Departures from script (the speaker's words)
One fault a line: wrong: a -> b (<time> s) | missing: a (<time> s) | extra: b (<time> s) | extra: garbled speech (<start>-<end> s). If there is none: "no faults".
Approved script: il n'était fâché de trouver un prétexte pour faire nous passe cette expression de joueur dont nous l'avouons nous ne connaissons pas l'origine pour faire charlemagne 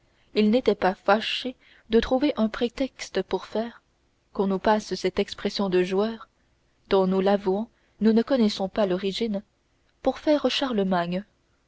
extra: pas (0.7 s)
extra: qu'on (4.3 s)